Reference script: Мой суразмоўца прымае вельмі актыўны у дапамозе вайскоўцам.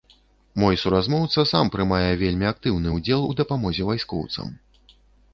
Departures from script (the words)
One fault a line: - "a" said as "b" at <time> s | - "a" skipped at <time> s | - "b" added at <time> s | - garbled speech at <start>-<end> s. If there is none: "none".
- "сам" added at 1.5 s
- "ўдзел" added at 2.9 s